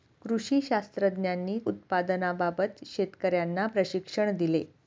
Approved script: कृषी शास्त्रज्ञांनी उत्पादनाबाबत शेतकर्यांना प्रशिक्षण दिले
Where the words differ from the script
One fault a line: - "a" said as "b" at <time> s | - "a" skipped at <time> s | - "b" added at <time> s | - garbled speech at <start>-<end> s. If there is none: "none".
none